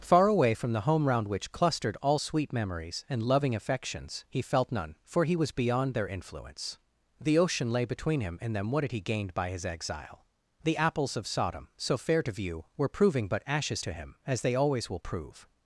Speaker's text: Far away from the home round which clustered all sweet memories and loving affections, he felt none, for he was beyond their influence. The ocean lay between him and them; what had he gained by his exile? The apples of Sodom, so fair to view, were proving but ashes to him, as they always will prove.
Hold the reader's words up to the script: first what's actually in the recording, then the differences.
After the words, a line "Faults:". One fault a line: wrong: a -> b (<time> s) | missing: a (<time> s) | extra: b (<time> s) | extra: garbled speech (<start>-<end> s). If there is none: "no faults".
Far away from the home round which clustered all sweet memories and loving affections, he felt none, for he was beyond their influence. The ocean lay between him and them; what had he gained by his exile? The apples of Sodom, so fair to view, were proving but ashes to him, as they always will prove.
Faults:
no faults